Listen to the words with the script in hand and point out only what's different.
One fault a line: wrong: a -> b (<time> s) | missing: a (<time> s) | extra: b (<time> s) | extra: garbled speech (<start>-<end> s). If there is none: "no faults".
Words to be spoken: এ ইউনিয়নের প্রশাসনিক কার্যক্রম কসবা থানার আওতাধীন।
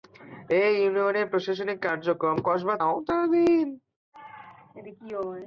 missing: থানার (2.8 s)